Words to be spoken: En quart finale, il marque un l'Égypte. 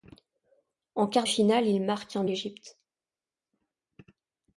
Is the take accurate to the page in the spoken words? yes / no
yes